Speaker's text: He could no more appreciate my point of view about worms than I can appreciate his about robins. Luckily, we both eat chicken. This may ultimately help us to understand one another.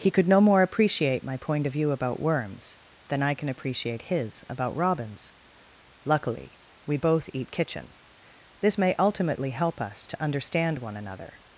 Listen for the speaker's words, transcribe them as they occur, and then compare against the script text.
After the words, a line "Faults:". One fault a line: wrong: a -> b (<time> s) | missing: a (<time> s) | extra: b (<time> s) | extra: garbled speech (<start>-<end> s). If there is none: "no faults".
He could no more appreciate my point of view about worms than I can appreciate his about robins. Luckily, we both eat kitchen. This may ultimately help us to understand one another.
Faults:
wrong: chicken -> kitchen (7.5 s)